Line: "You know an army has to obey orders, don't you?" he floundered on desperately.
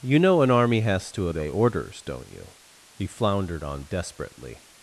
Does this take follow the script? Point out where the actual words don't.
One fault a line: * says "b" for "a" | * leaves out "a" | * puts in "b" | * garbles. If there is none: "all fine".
all fine